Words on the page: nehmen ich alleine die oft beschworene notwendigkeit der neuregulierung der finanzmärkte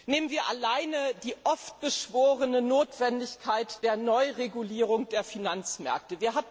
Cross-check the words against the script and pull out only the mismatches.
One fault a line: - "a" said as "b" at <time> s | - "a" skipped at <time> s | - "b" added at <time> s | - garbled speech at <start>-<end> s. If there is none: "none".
- "ich" said as "wir" at 0.3 s